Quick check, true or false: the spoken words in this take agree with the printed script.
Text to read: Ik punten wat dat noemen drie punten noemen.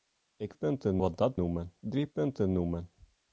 true